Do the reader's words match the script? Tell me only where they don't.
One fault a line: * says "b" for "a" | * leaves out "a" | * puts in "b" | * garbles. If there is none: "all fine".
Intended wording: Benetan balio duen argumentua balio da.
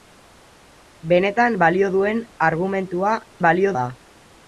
all fine